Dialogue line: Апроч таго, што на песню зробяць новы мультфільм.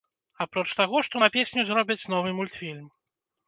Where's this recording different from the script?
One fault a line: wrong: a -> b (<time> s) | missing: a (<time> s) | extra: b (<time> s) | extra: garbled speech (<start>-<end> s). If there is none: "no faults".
no faults